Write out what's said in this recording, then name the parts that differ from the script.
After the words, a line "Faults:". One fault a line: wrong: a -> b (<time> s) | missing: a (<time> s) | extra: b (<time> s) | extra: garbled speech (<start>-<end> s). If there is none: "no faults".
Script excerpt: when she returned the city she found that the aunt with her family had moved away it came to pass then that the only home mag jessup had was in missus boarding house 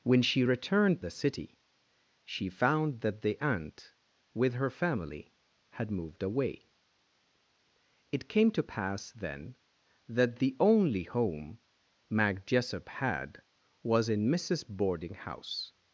when she returned the city she found that the aunt with her family had moved away it came to pass then that the only home mag jessup had was in missus boarding house
Faults:
no faults